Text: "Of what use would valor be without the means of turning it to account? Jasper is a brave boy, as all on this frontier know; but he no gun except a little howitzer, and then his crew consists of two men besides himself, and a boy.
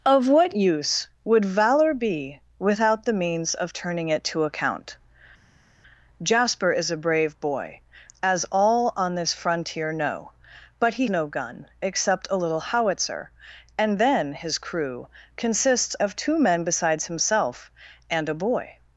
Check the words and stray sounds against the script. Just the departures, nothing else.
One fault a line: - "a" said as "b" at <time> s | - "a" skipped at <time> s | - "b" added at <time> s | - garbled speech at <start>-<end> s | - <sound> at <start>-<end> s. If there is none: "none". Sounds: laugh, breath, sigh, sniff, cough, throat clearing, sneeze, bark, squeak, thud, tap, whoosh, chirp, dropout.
none